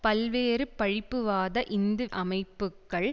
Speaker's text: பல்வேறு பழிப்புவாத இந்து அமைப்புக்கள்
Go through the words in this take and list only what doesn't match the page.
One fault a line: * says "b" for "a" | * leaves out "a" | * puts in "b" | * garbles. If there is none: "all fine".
all fine